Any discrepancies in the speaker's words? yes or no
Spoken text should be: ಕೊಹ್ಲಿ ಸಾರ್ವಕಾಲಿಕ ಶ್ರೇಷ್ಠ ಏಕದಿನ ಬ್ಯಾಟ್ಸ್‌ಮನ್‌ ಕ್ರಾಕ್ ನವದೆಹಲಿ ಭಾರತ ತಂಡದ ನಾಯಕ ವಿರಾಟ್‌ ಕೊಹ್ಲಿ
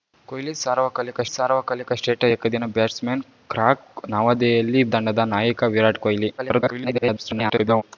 yes